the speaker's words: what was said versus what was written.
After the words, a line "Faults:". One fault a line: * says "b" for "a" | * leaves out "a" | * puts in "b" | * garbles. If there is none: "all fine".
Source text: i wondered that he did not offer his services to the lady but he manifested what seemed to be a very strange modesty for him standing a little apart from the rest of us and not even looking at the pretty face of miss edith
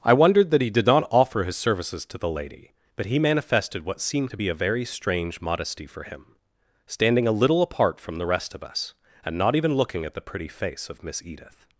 i wondered that he did not offer his services to the lady but he manifested what seemed to be a very strange modesty for him standing a little apart from the rest of us and not even looking at the pretty face of miss edith
Faults:
all fine